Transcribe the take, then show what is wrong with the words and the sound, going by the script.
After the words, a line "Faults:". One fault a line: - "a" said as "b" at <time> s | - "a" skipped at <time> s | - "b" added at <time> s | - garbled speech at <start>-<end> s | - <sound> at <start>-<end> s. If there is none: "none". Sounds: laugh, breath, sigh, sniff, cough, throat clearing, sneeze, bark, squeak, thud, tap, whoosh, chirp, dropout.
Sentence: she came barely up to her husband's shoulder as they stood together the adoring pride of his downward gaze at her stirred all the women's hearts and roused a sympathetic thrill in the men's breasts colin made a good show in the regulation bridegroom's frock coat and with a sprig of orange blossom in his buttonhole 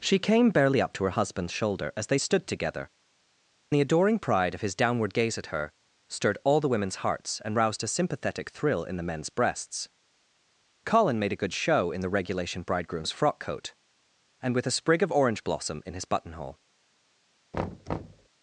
she came barely up to her husband's shoulder as they stood together the adoring pride of his downward gaze at her stirred all the women's hearts and roused a sympathetic thrill in the men's breasts colin made a good show in the regulation bridegroom's frock coat and with a sprig of orange blossom in his buttonhole
Faults:
- thud at 17.5-18.3 s